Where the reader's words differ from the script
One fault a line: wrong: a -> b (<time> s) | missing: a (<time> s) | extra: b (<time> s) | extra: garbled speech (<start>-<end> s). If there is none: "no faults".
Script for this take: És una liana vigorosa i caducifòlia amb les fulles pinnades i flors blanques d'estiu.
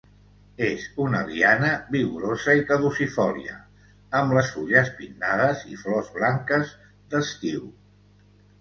no faults